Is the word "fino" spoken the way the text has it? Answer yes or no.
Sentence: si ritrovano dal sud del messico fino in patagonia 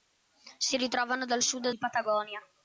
no